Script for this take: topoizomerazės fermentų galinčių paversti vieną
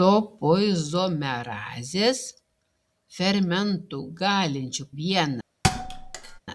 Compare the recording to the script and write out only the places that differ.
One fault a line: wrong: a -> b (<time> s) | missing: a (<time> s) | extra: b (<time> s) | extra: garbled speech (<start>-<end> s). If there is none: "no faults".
missing: paversti (4.8 s)